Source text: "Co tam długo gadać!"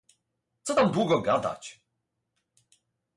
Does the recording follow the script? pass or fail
pass